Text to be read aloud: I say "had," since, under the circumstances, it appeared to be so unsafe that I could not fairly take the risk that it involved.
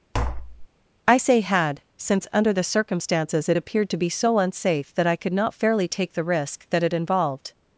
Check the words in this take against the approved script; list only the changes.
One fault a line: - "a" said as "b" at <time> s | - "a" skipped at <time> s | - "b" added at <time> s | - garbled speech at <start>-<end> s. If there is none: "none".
none